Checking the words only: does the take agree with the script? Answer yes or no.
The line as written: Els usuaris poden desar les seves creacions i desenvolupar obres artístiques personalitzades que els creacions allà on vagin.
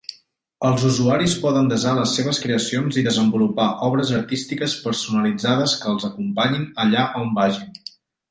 no